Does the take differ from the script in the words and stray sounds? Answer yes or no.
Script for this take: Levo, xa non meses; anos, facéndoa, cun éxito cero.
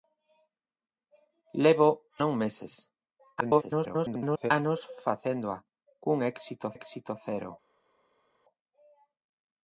yes